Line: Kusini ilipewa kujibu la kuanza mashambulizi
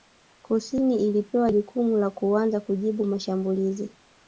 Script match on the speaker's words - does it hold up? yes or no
no